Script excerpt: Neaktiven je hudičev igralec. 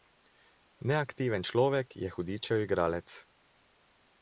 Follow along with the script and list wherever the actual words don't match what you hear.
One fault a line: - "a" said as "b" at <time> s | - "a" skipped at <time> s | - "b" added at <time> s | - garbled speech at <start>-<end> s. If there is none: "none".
- "človek" added at 1.4 s